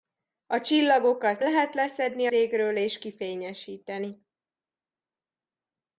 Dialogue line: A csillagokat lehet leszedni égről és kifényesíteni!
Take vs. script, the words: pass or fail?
pass